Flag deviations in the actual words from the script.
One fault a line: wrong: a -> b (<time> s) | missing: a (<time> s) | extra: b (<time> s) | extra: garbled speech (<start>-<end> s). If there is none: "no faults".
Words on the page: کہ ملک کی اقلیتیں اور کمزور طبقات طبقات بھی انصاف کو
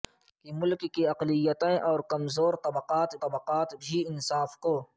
no faults